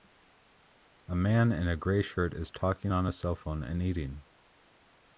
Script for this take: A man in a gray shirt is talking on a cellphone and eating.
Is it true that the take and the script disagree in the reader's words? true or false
false